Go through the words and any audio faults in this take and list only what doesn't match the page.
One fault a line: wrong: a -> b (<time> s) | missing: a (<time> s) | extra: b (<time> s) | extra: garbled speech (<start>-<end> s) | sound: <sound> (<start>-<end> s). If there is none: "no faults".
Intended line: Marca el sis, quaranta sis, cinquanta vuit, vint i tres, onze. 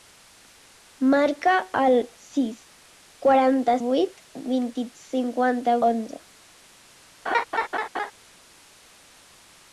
missing: sis cinquanta (3.7 s)
wrong: tres -> cinquanta (5.0 s)
sound: laugh (7.3-8.1 s)